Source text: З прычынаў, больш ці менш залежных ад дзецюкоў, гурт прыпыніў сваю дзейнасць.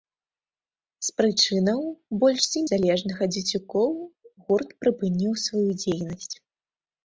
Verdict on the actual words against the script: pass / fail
fail